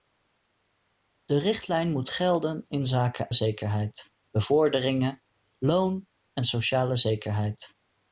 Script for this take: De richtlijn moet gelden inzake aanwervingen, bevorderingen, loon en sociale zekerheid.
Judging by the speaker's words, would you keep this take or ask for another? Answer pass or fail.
fail